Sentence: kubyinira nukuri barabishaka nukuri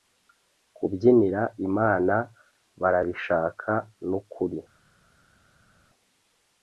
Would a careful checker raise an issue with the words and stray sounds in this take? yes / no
yes